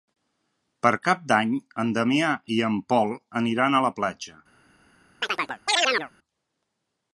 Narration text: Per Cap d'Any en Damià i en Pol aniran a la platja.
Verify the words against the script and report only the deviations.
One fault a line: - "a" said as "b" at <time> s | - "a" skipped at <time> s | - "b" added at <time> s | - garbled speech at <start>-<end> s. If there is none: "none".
none